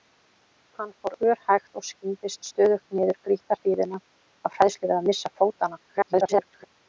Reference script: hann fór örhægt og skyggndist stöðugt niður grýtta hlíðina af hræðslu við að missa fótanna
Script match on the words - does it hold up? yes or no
no